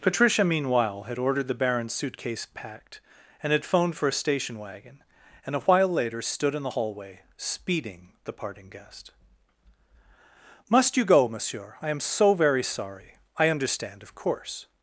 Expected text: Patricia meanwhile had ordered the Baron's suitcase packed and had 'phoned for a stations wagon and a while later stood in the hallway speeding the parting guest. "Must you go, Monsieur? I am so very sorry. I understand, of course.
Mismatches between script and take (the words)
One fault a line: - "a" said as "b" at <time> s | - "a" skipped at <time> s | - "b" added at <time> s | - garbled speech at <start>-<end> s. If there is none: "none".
- "stations" said as "station" at 4.1 s